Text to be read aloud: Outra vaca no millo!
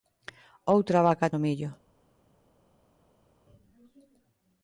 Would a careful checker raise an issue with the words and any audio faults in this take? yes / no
no